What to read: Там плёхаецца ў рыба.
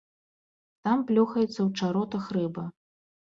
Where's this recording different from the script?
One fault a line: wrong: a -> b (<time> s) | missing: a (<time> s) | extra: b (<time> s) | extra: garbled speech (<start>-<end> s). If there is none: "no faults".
extra: чаротах (1.8 s)